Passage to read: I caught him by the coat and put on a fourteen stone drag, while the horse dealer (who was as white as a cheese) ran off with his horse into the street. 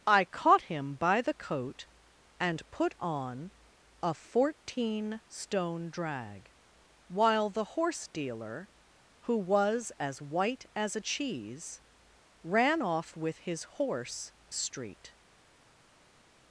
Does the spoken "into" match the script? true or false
false